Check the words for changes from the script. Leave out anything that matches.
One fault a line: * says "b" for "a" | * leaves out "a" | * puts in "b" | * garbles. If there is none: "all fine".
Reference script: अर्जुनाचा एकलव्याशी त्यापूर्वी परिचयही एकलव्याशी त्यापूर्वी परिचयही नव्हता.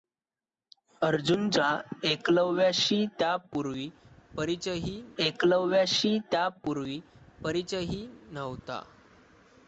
all fine